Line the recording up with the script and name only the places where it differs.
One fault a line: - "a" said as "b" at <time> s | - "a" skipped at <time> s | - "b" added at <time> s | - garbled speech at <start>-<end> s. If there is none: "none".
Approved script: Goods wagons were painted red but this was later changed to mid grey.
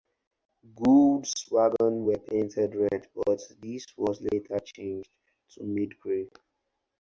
none